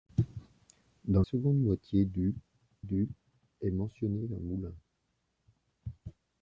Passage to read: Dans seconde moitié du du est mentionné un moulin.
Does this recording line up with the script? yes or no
yes